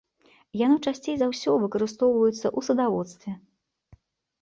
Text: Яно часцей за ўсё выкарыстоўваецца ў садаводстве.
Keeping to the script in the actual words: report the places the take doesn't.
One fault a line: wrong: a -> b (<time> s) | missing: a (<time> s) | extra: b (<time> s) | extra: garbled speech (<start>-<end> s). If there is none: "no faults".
no faults